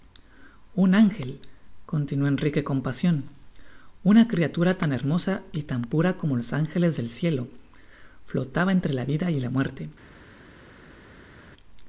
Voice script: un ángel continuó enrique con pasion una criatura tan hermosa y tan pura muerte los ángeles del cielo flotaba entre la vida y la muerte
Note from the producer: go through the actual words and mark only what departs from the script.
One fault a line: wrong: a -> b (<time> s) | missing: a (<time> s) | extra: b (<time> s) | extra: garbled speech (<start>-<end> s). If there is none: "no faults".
wrong: muerte -> como (6.2 s)